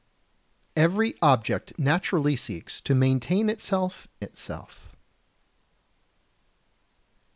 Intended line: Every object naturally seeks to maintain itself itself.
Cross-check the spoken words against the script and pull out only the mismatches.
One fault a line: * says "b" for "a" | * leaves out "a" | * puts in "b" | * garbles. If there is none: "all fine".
all fine